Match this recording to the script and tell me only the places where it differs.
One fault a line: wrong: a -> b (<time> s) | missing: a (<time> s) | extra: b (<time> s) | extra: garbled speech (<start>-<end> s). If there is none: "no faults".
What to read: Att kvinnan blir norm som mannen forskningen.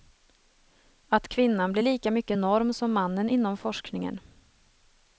extra: lika mycket (1.8 s)
extra: inom (3.3 s)